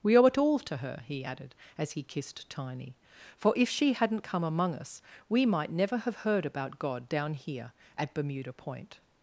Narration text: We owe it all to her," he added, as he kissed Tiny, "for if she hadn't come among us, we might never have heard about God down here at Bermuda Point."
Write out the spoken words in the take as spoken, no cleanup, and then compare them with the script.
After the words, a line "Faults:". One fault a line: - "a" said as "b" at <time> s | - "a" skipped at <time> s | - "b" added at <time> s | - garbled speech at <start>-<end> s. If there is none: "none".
We owe it all to her," he added, as he kissed Tiny, "for if she hadn't come among us, we might never have heard about God down here at Bermuda Point."
Faults:
none